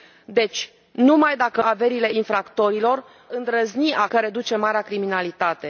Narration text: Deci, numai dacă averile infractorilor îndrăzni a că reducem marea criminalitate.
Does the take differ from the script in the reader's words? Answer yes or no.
no